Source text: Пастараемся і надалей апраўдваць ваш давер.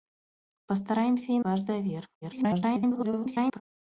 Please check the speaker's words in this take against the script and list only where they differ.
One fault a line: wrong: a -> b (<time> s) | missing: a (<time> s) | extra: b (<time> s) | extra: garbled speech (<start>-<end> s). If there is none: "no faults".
missing: надалей апраўдваць (1.4 s)
extra: garbled speech (2.2-3.6 s)